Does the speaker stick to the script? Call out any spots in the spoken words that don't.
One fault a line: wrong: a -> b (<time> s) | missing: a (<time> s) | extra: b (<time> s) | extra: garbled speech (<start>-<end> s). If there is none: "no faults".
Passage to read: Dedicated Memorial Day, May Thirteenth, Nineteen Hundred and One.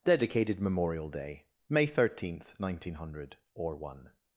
wrong: and -> or (3.5 s)